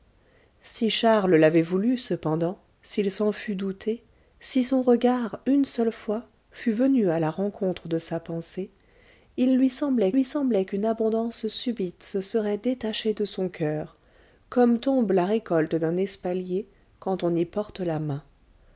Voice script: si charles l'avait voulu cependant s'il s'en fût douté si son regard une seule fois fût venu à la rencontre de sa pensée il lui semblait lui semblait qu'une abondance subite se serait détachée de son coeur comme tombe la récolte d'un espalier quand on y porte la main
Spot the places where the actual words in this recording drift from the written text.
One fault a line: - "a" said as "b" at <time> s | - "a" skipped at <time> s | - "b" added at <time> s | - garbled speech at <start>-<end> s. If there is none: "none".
none